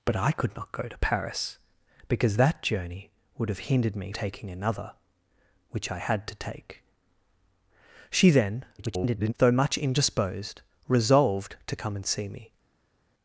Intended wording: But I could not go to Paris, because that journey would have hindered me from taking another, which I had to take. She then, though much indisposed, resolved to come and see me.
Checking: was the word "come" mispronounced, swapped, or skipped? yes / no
no